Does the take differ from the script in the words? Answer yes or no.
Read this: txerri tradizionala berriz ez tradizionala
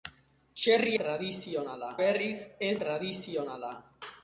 no